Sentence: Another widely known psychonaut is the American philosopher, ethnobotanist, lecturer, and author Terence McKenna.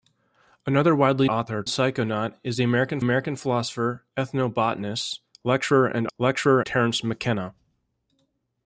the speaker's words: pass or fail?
fail